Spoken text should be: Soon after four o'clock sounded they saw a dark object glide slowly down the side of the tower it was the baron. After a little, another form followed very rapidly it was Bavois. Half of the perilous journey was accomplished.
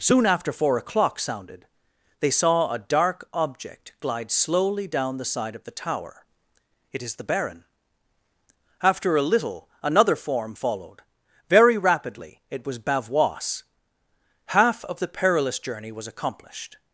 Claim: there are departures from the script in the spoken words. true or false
true